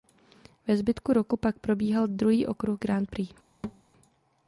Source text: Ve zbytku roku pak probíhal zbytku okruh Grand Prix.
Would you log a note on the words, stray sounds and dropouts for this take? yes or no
yes